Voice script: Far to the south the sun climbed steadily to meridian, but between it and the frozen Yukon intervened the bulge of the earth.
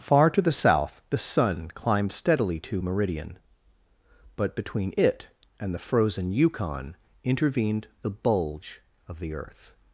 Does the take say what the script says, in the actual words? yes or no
yes